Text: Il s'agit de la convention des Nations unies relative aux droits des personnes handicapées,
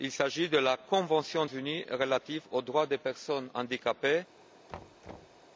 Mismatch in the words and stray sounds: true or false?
true